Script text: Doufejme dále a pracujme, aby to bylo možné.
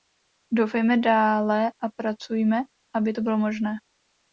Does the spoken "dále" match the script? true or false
true